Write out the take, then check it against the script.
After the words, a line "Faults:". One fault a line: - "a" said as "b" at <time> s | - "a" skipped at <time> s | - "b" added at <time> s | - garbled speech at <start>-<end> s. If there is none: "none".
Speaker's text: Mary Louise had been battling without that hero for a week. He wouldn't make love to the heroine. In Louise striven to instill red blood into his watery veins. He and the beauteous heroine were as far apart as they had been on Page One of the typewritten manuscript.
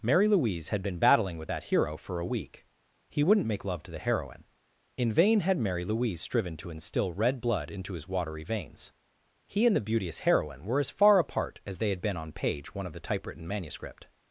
Mary Louise had been battling with that hero for a week. He wouldn't make love to the heroine. In vain had Mary Louise striven to instill red blood into his watery veins. He and the beauteous heroine were as far apart as they had been on Page One of the typewritten manuscript.
Faults:
- "without" said as "with" at 1.4 s
- "vain had Mary" added at 5.1 s